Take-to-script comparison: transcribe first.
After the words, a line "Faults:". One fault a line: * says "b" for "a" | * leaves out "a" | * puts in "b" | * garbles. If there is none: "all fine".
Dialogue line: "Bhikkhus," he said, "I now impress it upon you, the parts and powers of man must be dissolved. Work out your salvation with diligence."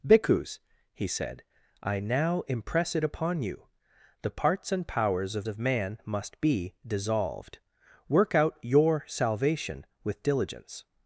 "Bhikkhus," he said, "I now impress it upon you, the parts and powers of of man must be dissolved. Work out your salvation with diligence."
Faults:
* puts in "of"